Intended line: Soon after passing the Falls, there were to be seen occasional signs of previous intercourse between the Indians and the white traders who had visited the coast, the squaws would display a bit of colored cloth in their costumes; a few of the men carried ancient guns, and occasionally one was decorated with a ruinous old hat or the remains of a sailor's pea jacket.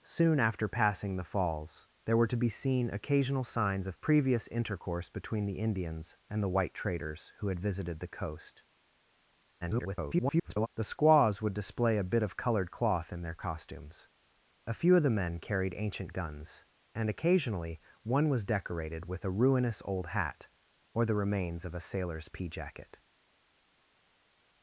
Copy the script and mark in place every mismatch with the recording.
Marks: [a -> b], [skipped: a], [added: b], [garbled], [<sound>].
Soon after passing the Falls, there were to be seen occasional signs of previous intercourse between the Indians and the white traders who had visited the coast, [garbled] the squaws would display a bit of colored cloth in their costumes; a few of the men carried ancient guns, and occasionally one was decorated with a ruinous old hat or the remains of a sailor's pea jacket.